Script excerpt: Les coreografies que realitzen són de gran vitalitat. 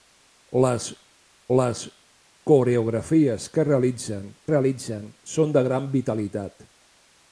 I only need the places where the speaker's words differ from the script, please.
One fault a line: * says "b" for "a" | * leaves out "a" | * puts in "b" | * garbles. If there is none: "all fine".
* puts in "les"
* puts in "realitzen"